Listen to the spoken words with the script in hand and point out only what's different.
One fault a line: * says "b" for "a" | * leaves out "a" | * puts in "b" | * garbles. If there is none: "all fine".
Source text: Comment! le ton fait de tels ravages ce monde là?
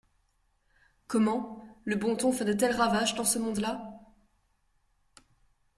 * puts in "bon"
* puts in "dans"